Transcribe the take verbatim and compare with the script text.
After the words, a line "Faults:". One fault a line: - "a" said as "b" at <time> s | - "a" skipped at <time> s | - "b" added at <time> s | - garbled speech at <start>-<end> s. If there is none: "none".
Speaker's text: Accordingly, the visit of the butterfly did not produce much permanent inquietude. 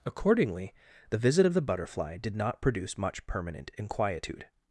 Accordingly, the visit of the butterfly did not produce much permanent inquietude.
Faults:
none